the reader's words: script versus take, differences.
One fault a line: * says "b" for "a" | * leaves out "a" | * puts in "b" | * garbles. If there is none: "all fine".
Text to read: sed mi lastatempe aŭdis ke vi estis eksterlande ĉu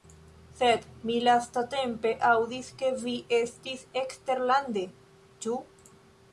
all fine